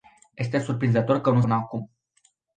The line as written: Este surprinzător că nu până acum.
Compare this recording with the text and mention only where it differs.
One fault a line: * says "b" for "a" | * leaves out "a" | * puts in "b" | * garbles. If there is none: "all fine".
all fine